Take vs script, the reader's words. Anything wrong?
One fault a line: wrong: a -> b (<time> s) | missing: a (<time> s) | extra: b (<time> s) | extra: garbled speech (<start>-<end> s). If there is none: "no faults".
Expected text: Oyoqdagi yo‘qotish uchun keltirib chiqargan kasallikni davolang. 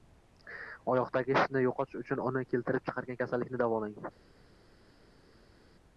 extra: shishni (1.4 s)
extra: uni (2.3 s)